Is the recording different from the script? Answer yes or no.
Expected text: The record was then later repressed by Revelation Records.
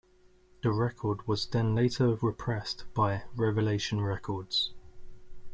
no